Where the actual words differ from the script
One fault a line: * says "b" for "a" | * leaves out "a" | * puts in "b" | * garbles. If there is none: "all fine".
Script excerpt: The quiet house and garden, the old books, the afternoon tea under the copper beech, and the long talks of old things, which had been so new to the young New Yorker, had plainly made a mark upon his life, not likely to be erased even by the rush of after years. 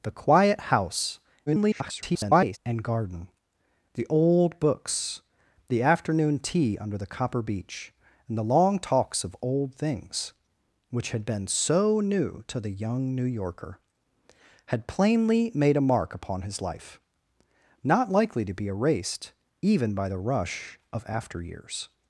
* garbles